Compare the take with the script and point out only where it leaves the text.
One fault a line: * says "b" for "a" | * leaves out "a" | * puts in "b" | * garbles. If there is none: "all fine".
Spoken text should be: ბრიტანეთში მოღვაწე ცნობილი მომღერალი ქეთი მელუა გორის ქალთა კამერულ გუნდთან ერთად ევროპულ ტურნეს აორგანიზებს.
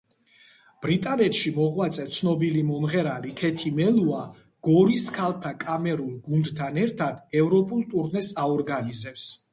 all fine